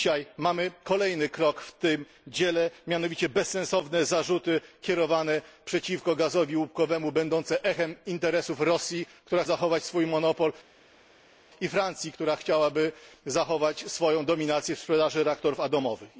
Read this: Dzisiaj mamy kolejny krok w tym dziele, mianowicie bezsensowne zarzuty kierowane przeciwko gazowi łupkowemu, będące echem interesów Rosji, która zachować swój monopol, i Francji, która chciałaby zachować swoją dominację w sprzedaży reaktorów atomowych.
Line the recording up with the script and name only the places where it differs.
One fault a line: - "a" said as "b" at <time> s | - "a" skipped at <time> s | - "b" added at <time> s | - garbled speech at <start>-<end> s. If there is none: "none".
none